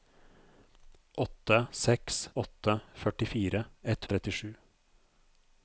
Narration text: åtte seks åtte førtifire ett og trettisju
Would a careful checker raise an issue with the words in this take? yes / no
no